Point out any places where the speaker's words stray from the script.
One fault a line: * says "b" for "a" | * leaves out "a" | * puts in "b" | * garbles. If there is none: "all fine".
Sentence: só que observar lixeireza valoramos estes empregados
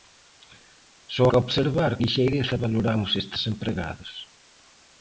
all fine